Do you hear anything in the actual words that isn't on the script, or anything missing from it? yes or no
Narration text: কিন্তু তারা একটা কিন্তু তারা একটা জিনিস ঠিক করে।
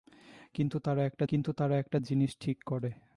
no